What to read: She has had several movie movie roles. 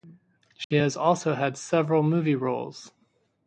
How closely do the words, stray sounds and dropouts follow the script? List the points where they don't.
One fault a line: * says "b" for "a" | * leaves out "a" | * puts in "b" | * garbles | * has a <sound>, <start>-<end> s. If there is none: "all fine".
* has a dropout, 0.6-0.7 s
* puts in "also"
* leaves out "movie"